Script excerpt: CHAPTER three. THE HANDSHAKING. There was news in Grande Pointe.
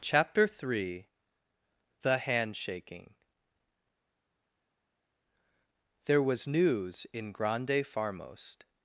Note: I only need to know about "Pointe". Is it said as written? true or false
false